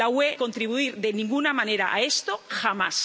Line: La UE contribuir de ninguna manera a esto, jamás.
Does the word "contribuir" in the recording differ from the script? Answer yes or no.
no